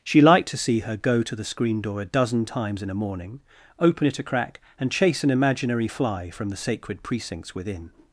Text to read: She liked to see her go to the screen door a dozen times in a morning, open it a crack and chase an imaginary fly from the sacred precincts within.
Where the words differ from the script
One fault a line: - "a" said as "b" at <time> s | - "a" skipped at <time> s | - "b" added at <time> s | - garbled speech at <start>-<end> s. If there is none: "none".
none